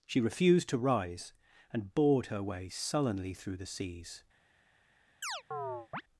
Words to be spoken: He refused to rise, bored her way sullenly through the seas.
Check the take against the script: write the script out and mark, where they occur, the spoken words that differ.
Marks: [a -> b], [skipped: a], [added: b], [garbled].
[He -> She] refused to rise, [added: and] bored her way sullenly through the seas.